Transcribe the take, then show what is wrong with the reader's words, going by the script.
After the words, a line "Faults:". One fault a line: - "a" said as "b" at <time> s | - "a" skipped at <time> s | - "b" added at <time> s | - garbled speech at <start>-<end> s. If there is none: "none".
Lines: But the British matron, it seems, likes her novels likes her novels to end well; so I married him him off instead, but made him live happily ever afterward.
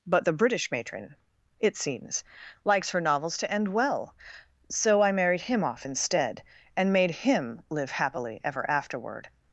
But the British matron, it seems, likes her novels to end well; so I married him off instead, and made him live happily ever afterward.
Faults:
- "likes her novels" skipped at 3.4 s
- "him" skipped at 5.6 s
- "but" said as "and" at 6.8 s